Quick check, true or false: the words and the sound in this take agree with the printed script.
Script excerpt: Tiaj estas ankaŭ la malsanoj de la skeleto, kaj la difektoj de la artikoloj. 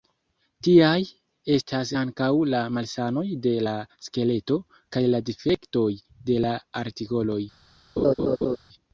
false